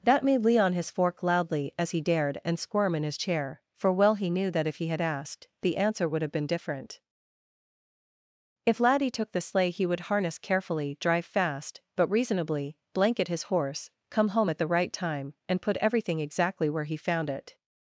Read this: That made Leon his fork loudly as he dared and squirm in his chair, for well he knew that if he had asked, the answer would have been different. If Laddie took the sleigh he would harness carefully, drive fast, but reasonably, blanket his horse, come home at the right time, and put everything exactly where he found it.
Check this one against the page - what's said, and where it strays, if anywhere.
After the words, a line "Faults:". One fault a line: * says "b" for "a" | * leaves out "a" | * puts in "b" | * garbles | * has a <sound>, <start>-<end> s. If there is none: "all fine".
That made Leon his fork loudly as he dared and squirm in his chair, for well he knew that if he had asked, the answer would have been different. If Laddie took the sleigh he would harness carefully, drive fast, but reasonably, blanket his horse, come home at the right time, and put everything exactly where he found it.
Faults:
all fine